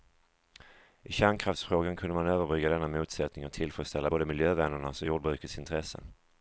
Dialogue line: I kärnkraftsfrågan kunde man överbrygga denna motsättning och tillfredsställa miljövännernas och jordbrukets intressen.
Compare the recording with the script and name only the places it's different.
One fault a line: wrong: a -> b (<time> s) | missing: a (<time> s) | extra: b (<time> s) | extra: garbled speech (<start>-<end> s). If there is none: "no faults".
extra: både (4.0 s)